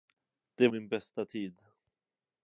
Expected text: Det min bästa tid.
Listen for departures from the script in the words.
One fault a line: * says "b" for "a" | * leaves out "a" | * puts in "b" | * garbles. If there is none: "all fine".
all fine